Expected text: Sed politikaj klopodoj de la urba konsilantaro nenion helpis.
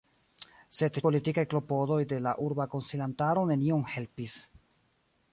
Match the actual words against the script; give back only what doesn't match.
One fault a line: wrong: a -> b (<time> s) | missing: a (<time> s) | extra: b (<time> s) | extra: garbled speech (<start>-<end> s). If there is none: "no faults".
no faults